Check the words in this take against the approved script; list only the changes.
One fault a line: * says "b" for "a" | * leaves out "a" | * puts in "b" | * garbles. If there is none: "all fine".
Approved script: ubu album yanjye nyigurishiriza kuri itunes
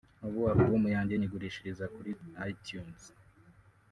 all fine